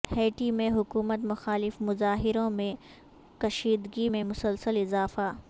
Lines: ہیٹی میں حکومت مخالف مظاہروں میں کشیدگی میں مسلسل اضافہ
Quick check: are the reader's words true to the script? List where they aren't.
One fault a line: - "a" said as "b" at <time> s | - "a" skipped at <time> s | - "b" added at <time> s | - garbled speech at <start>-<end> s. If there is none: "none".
none